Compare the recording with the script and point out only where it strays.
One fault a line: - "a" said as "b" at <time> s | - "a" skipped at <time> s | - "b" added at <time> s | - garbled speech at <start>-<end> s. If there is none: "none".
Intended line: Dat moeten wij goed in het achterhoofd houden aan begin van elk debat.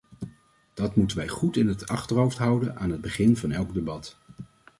- "het" added at 2.9 s